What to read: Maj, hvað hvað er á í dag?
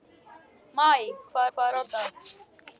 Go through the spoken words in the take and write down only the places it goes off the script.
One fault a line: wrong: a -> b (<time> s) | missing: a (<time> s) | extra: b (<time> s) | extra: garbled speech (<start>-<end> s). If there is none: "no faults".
no faults